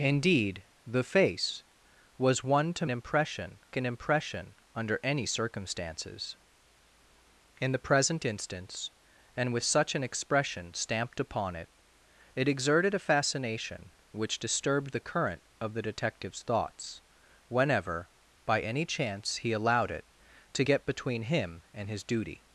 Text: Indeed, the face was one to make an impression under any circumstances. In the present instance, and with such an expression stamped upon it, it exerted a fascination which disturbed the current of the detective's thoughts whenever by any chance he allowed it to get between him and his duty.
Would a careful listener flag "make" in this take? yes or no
yes